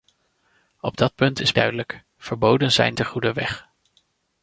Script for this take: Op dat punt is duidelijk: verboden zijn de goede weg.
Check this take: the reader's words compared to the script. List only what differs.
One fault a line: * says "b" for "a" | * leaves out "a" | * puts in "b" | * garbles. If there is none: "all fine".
all fine